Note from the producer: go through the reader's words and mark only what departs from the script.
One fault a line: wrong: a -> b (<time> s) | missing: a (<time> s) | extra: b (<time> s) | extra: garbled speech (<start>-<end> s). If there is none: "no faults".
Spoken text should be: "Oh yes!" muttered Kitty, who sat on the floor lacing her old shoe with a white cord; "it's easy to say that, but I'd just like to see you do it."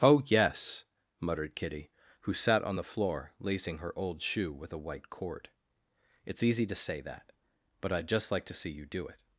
no faults